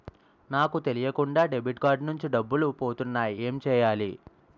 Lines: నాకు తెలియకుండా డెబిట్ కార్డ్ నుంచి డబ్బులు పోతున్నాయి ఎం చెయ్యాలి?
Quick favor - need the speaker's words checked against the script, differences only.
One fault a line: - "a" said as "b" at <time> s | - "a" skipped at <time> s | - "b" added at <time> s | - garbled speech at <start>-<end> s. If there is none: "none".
none